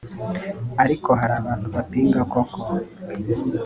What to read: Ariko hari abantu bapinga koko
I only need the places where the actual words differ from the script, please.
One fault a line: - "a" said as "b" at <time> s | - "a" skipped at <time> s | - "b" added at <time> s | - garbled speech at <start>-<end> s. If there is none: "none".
none